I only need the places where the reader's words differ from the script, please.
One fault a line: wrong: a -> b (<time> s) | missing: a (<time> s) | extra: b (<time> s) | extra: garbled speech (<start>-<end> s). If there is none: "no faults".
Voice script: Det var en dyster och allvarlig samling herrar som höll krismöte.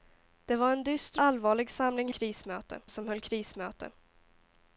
missing: och (1.2 s)
wrong: herrar -> krismöte (2.1 s)